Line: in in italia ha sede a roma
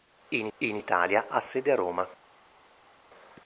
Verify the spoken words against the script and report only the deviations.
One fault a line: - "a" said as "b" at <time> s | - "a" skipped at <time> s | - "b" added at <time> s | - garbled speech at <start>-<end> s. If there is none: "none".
none